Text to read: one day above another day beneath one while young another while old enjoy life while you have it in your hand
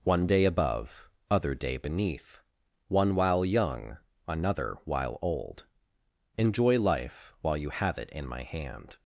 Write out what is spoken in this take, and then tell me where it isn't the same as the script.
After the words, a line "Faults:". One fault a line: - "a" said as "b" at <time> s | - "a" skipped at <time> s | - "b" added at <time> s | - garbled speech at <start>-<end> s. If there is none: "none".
one day above other day beneath one while young another while old enjoy life while you have it in my hand
Faults:
- "another" said as "other" at 1.3 s
- "your" said as "my" at 8.3 s